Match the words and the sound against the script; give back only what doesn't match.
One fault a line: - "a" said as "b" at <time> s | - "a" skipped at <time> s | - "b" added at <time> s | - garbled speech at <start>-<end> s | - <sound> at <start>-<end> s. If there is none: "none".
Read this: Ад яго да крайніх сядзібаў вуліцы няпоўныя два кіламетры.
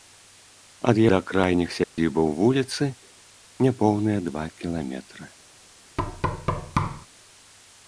- "яго" skipped at 1.0 s
- dropout at 1.8-2.0 s
- thud at 6.0-7.1 s